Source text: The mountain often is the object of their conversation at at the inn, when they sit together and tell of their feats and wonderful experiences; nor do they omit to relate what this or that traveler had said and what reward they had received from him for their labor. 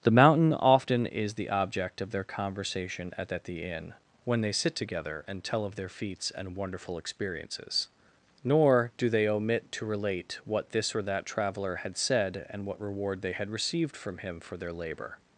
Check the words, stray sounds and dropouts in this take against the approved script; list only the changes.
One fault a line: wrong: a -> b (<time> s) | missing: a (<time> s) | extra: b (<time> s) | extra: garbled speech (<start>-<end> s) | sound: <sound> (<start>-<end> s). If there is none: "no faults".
no faults